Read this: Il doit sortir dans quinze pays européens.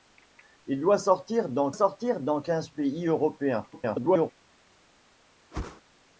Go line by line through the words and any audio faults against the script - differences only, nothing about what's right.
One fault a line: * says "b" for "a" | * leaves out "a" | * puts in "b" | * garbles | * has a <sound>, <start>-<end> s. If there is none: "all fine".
* puts in "sortir dans"
* garbles
* has a whoosh, 5.5-5.8 s